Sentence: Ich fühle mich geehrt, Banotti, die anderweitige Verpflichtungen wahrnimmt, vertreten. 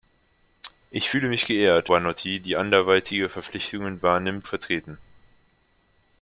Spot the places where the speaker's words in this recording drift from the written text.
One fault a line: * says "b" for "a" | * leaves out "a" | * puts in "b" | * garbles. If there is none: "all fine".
all fine